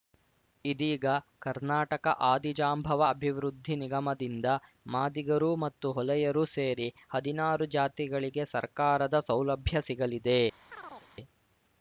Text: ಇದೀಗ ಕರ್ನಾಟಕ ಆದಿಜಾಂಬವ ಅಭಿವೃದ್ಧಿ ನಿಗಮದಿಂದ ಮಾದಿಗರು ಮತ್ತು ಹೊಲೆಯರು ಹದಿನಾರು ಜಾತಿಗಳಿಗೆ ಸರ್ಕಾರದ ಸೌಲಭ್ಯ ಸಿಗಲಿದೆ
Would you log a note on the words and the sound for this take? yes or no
yes